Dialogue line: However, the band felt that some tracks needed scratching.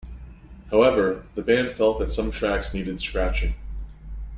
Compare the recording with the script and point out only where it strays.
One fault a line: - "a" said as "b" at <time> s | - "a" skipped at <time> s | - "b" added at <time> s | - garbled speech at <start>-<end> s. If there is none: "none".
none